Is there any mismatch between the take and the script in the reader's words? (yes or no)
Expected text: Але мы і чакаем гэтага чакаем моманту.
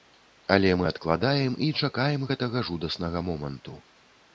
yes